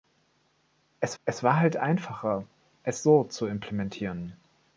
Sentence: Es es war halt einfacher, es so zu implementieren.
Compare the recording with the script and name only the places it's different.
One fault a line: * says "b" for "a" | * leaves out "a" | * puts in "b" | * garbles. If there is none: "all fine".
all fine